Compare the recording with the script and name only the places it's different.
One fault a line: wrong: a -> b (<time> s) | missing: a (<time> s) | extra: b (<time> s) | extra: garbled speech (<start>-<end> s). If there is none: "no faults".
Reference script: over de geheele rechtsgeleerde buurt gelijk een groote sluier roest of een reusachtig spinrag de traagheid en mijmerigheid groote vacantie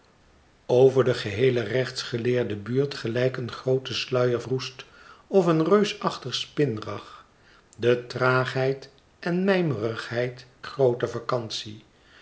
no faults